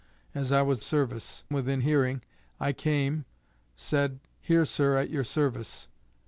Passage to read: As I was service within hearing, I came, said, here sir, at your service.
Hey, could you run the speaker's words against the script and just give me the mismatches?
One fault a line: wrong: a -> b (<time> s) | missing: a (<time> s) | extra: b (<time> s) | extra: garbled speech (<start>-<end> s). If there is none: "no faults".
no faults